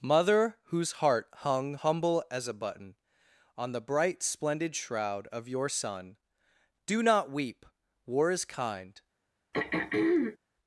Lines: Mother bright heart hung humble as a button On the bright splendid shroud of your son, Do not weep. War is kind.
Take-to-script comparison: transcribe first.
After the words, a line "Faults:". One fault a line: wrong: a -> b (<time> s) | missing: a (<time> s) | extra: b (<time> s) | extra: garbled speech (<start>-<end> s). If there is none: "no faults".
Mother whose heart hung humble as a button On the bright splendid shroud of your son, Do not weep. War is kind.
Faults:
wrong: bright -> whose (0.6 s)